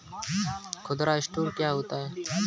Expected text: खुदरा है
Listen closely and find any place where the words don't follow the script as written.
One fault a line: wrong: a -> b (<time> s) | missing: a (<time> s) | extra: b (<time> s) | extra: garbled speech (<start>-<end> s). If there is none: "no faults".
extra: स्टोर क्या होता (1.2 s)